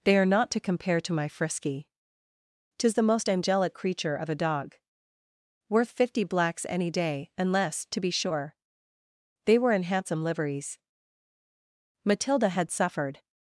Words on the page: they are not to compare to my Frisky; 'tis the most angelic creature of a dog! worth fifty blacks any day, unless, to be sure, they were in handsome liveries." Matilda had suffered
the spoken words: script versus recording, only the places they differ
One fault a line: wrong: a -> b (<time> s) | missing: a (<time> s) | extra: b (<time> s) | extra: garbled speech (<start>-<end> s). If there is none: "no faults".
no faults